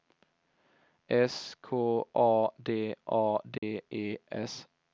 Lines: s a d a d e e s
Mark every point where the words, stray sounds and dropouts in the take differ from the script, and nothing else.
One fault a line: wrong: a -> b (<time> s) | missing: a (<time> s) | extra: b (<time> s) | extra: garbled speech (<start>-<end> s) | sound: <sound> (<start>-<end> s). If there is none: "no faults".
extra: k (1.6 s)
sound: dropout (3.6-3.6 s)
missing: e (4.2 s)